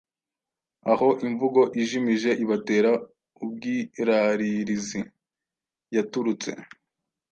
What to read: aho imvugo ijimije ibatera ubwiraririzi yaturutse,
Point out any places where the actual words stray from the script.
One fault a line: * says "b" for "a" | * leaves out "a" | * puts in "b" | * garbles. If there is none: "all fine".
all fine